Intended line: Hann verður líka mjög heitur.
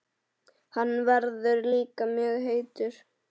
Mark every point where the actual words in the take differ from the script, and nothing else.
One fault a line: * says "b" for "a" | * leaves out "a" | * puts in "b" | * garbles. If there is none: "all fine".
all fine